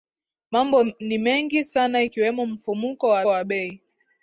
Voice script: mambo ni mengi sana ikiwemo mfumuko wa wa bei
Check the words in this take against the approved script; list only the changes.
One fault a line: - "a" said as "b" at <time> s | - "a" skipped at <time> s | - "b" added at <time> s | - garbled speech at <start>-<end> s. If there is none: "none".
none